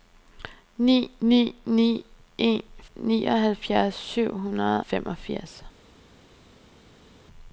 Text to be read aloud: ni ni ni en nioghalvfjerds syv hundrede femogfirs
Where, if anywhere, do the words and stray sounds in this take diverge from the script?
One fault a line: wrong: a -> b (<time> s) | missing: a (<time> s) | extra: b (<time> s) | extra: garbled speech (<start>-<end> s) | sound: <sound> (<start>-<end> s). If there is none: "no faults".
no faults